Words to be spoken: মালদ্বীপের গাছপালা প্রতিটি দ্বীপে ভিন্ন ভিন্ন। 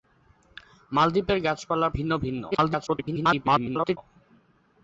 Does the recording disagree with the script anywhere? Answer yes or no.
yes